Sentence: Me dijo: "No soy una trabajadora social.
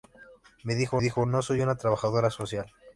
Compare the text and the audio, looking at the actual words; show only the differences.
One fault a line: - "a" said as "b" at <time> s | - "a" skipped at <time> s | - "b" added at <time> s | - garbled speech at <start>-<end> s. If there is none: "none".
- "dijo" added at 1.0 s